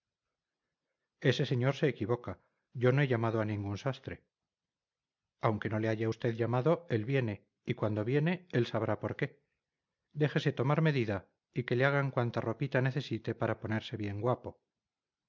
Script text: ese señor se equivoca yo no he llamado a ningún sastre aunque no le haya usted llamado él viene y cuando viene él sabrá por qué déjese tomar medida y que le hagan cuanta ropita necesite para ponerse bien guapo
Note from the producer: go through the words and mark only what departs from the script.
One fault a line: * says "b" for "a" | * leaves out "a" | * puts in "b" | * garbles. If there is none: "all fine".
all fine